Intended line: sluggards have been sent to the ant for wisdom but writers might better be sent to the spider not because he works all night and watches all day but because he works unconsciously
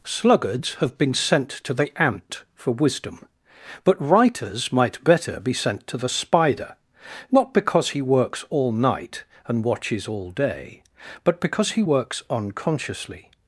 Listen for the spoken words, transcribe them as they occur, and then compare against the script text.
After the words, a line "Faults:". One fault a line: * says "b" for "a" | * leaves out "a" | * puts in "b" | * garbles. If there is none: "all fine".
sluggards have been sent to the ant for wisdom but writers might better be sent to the spider not because he works all night and watches all day but because he works unconsciously
Faults:
all fine